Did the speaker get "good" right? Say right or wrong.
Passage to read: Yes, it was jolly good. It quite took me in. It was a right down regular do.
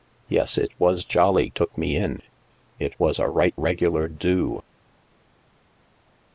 wrong